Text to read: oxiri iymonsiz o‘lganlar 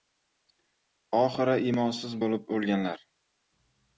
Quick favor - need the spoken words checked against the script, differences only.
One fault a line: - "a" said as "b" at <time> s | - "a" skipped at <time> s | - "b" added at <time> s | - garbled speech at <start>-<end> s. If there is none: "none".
- "bo‘lib" added at 2.2 s